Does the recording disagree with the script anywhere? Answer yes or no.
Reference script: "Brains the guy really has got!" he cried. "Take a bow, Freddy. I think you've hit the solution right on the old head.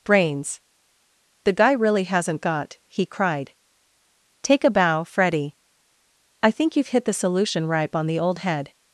yes